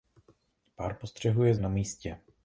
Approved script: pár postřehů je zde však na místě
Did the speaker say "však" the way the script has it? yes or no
no